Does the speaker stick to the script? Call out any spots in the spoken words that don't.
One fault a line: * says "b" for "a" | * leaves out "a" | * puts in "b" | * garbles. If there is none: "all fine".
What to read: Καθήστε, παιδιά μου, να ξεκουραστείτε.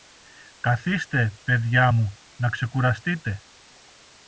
all fine